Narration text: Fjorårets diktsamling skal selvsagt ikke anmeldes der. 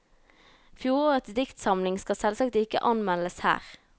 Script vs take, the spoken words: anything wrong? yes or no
yes